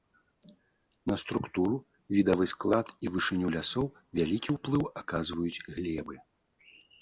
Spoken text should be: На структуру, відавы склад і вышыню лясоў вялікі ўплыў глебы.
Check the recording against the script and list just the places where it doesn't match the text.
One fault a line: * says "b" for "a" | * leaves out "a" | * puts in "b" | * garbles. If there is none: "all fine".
* puts in "аказваюць"